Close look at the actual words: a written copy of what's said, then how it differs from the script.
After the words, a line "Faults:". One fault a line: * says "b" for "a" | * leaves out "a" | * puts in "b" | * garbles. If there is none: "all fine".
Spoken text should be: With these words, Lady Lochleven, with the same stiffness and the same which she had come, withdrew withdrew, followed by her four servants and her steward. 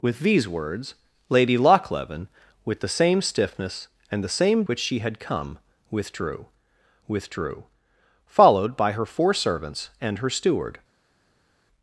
With these words, Lady Lochleven, with the same stiffness and the same which she had come, withdrew withdrew, followed by her four servants and her steward.
Faults:
all fine